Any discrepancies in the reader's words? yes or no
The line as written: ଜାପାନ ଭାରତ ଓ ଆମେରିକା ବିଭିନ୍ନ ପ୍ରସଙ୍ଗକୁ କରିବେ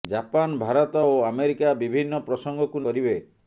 no